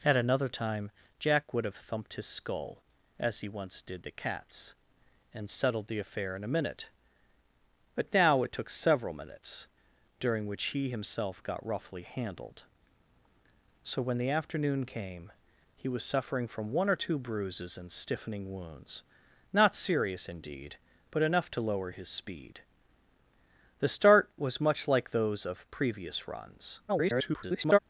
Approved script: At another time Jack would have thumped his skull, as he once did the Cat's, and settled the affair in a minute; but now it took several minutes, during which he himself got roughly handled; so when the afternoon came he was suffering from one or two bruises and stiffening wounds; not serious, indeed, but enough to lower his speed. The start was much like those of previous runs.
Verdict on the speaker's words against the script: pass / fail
fail